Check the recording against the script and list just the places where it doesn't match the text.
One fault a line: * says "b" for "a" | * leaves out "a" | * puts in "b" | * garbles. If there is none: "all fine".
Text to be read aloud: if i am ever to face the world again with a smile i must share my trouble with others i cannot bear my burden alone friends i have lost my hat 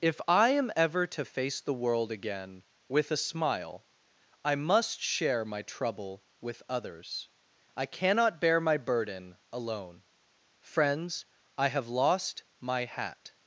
all fine